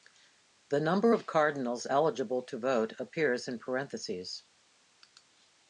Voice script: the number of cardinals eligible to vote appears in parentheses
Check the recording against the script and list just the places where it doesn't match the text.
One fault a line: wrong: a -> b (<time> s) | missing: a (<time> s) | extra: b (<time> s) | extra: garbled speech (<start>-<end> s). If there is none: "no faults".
no faults